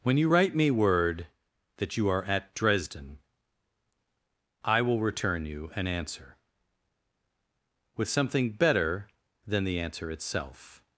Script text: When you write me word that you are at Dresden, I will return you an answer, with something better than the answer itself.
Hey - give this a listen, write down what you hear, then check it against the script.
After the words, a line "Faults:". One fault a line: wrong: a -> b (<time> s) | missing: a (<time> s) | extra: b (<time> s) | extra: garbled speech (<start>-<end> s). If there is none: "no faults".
When you write me word that you are at Dresden, I will return you an answer, with something better than the answer itself.
Faults:
no faults